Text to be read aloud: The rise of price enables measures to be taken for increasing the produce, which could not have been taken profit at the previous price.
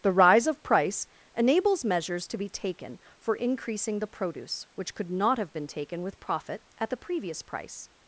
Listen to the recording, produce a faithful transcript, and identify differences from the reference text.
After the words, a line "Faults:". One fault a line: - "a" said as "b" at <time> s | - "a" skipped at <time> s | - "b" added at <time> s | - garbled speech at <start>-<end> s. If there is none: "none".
The rise of price enables measures to be taken for increasing the produce, which could not have been taken with profit at the previous price.
Faults:
- "with" added at 6.0 s